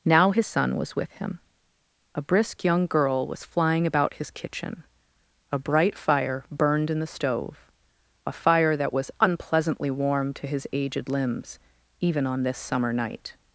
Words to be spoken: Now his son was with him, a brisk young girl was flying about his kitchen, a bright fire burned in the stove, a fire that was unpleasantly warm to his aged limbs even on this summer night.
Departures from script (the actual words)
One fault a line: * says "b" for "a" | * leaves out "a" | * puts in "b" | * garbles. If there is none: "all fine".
all fine